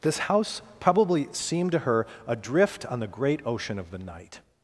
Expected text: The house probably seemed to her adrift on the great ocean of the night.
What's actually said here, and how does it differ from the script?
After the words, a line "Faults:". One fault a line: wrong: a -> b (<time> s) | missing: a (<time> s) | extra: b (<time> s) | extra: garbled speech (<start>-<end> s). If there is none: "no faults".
This house probably seemed to her adrift on the great ocean of the night.
Faults:
wrong: The -> This (0.0 s)